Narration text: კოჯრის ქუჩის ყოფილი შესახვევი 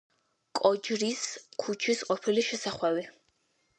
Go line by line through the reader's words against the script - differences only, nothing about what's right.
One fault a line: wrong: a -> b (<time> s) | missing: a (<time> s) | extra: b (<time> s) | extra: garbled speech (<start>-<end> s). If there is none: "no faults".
no faults